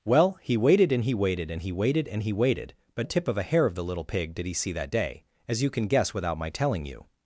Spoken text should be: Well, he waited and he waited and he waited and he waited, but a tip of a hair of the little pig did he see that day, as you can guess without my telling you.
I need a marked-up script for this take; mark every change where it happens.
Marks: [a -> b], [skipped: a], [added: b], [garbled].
Well, he waited and he waited and he waited and he waited, but a tip of a hair of the little pig did he see that day, as you can guess without my telling you.